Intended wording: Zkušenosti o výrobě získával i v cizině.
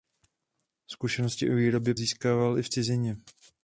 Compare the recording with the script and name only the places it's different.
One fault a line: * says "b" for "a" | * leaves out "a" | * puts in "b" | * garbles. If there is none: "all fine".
all fine